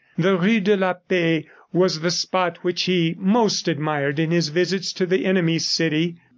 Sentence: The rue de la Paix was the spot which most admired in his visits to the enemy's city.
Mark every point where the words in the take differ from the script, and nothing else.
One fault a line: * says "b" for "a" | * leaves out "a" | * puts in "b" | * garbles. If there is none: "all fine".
* puts in "he"